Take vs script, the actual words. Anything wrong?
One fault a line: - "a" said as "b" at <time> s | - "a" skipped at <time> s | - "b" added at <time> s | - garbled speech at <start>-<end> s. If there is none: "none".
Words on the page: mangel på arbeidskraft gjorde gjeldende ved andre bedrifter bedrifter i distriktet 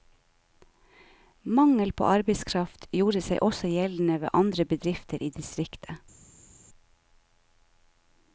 - "seg også" added at 3.2 s
- "bedrifter" skipped at 5.2 s